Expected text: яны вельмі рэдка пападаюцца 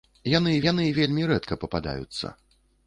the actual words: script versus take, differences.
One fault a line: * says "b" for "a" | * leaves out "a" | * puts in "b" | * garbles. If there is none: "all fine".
* puts in "яны"